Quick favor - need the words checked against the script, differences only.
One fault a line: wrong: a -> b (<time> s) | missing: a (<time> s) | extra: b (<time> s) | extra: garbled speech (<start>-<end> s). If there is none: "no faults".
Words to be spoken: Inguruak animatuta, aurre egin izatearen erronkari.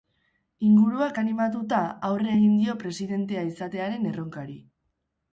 extra: dio presidentea (2.6 s)